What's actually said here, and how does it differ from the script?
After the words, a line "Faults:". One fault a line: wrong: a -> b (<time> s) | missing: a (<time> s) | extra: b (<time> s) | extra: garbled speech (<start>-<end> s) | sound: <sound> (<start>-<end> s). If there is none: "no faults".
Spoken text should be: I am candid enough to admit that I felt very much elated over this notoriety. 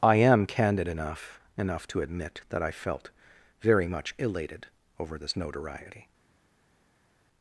I am candid enough enough to admit that I felt very much elated over this notoriety.
Faults:
extra: enough (1.6 s)